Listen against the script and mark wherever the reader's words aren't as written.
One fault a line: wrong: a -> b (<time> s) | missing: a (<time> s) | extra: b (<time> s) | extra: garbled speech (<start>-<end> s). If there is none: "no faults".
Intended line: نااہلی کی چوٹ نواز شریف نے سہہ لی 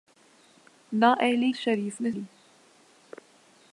missing: کی چوٹ نواز (1.5 s)
missing: سہہ (2.1 s)